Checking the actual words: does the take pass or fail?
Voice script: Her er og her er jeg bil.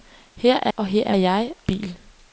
pass